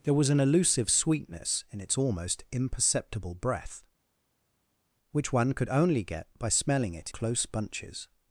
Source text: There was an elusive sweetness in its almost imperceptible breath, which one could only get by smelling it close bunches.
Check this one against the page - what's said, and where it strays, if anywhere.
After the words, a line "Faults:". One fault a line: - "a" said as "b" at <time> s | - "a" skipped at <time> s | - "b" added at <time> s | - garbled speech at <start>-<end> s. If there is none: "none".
There was an elusive sweetness in its almost imperceptible breath, which one could only get by smelling it close bunches.
Faults:
none